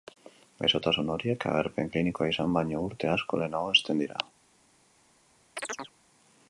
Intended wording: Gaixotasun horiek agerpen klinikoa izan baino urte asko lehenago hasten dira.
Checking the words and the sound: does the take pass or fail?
fail